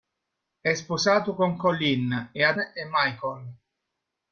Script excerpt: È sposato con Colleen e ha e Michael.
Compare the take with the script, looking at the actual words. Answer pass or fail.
pass